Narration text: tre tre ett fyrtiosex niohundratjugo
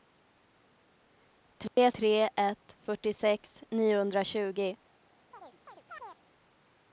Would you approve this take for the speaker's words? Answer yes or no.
yes